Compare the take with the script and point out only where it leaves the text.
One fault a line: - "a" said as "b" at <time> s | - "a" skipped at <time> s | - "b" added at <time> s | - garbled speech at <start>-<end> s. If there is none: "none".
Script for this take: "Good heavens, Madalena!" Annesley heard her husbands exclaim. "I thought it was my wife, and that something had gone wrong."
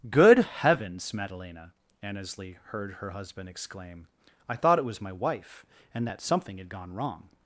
- "husbands" said as "husband" at 3.1 s